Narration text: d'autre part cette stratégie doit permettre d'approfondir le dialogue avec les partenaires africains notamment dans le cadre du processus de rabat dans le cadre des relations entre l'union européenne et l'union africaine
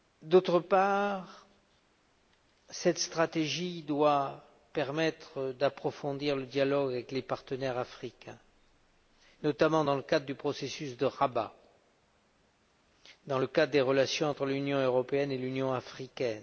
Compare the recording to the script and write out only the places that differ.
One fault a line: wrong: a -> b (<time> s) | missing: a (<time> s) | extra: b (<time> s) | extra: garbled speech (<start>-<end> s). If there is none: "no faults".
no faults